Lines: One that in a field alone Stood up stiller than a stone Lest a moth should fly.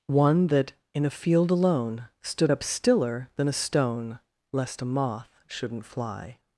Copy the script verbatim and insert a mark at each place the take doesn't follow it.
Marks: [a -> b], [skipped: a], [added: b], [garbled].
One that in a field alone Stood up stiller than a stone Lest a moth [should -> shouldn't] fly.